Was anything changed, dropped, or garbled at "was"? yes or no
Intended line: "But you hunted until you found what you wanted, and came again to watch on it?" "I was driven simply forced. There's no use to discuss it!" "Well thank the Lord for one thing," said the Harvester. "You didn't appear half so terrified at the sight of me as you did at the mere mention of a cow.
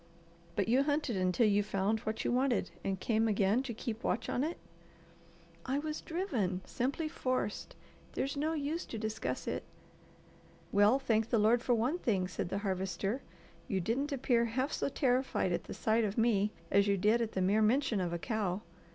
no